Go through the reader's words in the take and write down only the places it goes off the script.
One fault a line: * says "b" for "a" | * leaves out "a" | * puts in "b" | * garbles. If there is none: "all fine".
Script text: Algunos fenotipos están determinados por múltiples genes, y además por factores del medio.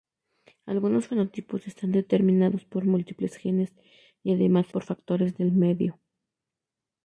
all fine